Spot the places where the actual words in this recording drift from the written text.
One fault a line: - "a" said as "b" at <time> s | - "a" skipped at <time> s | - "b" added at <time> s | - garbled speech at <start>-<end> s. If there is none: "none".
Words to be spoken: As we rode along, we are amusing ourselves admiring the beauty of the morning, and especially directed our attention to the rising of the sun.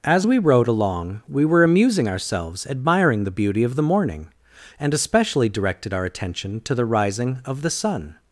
- "are" said as "were" at 1.4 s